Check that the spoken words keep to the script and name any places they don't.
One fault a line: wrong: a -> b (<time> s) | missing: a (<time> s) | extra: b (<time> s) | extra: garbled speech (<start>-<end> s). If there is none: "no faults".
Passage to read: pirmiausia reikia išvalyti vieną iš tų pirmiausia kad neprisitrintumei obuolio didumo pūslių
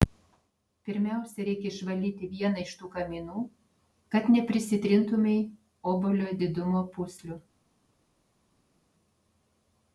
wrong: pirmiausia -> kaminų (2.9 s)